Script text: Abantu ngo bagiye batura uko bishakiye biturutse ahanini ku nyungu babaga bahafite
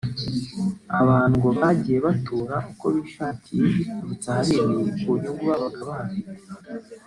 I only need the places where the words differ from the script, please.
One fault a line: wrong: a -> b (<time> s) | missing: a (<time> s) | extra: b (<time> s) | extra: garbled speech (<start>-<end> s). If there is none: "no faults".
no faults